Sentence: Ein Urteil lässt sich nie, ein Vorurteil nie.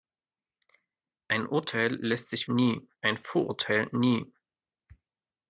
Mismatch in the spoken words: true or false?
false